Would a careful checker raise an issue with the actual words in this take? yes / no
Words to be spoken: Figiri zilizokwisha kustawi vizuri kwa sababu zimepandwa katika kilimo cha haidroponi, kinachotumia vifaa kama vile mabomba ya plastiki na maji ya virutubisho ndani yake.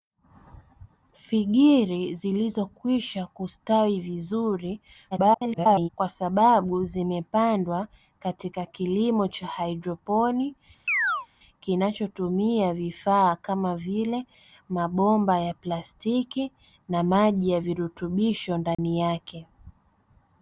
yes